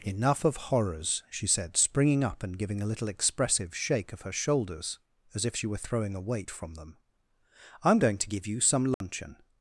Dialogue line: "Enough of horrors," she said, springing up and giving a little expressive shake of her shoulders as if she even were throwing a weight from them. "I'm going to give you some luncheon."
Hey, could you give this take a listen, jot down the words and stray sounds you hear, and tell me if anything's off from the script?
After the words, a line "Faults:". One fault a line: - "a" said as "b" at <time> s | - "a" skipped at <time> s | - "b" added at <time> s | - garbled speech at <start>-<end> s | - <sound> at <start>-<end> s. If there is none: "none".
"Enough of horrors," she said, springing up and giving a little expressive shake of her shoulders as if she were throwing a weight from them. "I'm going to give you some luncheon."
Faults:
- "even" skipped at 5.7 s
- dropout at 8.9-9.0 s